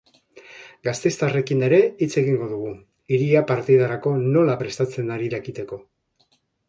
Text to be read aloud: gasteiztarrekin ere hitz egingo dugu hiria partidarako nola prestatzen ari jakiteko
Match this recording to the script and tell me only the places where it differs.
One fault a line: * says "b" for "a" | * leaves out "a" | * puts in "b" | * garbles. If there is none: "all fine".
all fine